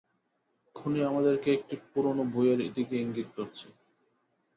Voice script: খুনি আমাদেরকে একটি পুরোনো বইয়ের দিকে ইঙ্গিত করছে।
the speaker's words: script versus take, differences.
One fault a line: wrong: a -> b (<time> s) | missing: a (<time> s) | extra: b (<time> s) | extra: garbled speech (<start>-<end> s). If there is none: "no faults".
no faults